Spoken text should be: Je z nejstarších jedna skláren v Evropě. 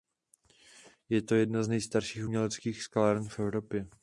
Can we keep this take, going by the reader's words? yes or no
no